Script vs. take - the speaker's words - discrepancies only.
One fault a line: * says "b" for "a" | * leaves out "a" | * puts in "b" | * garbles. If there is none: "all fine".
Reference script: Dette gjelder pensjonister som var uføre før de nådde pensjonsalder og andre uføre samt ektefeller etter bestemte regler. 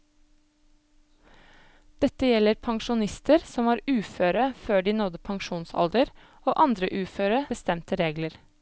* leaves out "samt ektefeller etter"